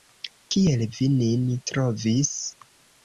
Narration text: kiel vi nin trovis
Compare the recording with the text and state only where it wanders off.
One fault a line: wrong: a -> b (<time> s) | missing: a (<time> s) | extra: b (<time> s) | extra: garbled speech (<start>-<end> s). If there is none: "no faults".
no faults